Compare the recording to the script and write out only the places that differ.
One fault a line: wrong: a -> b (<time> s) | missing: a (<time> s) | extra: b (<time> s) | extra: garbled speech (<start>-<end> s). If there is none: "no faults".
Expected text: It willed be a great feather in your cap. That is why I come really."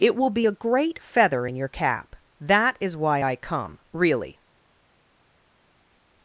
wrong: willed -> will (0.1 s)